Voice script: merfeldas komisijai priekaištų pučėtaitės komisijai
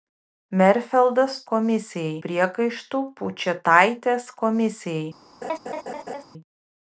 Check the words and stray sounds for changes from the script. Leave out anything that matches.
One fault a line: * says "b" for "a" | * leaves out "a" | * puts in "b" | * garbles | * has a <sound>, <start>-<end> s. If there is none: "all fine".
* has a laugh, 5.4-6.2 s